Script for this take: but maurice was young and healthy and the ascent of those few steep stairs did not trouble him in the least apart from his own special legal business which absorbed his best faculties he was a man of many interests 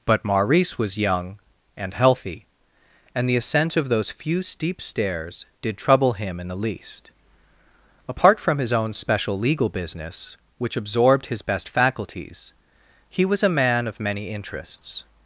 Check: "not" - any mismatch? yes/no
yes